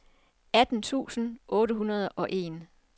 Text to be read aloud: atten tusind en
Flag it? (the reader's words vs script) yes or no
yes